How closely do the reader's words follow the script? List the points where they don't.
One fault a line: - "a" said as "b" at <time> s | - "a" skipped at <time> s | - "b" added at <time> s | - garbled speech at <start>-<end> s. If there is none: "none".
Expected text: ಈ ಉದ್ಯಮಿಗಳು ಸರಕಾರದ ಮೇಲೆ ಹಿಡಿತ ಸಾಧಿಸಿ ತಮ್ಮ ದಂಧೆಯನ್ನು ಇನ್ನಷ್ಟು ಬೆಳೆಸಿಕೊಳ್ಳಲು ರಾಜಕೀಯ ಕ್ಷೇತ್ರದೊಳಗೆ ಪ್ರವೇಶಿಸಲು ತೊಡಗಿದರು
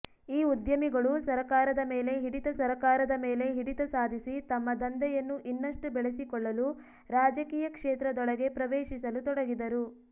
- "ಸರಕಾರದ ಮೇಲೆ ಹಿಡಿತ" added at 2.6 s